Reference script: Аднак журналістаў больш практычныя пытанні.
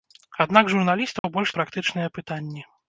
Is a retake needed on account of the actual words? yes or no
no